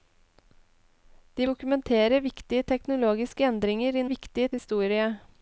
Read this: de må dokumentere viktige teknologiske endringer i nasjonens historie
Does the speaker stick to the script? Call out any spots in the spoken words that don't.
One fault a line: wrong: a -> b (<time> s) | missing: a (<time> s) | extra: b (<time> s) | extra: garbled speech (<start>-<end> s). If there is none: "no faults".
missing: må (1.5 s)
wrong: nasjonens -> viktige (4.1 s)